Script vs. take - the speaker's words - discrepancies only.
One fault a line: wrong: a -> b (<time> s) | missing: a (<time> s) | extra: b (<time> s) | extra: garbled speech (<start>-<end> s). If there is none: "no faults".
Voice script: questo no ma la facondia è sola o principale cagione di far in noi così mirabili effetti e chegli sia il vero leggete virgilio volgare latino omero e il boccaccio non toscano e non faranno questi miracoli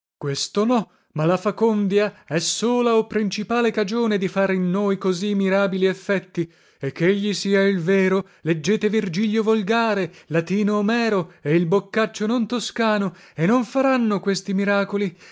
no faults